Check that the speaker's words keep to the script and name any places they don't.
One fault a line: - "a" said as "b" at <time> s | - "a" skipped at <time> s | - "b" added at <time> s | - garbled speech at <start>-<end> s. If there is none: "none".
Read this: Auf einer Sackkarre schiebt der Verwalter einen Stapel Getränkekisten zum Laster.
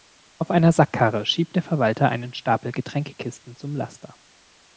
none